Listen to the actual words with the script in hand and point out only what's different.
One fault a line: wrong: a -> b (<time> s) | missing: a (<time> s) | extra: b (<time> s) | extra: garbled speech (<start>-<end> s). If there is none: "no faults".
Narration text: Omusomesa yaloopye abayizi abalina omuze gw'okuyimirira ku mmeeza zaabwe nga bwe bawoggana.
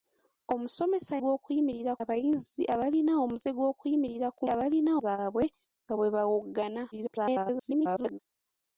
wrong: yaloopye -> gw'okuyimirira (1.2 s)
wrong: mmeeza -> abalina (4.5 s)
extra: garbled speech (6.9-8.2 s)